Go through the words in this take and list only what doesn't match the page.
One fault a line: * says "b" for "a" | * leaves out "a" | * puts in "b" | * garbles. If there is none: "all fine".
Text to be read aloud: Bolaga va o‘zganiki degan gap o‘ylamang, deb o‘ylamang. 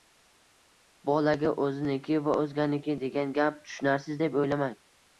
* puts in "o‘ziniki"
* says "tushunarsiz" for "o‘ylamang"